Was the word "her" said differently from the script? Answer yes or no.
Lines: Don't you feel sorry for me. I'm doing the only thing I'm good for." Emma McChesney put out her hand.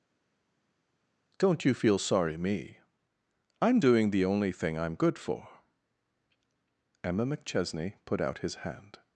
yes